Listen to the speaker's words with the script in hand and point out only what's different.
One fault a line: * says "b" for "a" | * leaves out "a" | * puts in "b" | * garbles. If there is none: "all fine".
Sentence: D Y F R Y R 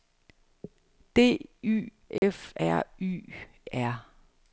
all fine